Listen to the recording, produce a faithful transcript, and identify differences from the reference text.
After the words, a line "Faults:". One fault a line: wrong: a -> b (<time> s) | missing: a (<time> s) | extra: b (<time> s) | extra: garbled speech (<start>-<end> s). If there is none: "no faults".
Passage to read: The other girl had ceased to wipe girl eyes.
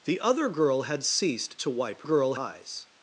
The other girl had ceased to wipe girl eyes.
Faults:
no faults